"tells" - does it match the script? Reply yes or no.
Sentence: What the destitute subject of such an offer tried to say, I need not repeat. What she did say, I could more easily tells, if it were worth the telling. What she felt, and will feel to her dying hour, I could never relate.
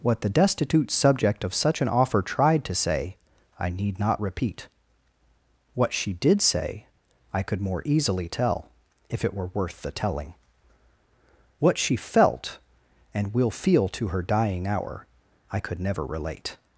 no